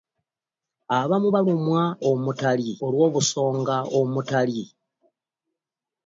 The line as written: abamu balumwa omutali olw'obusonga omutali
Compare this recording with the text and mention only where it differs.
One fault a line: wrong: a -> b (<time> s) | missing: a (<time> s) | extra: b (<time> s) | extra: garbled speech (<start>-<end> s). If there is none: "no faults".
no faults